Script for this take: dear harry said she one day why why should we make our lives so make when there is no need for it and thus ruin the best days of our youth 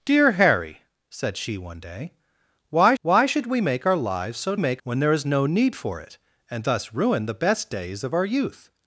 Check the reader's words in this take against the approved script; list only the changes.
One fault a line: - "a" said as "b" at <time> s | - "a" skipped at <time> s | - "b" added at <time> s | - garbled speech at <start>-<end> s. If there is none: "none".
none